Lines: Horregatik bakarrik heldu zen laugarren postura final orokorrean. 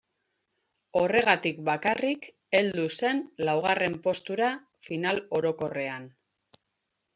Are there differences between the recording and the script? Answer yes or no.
no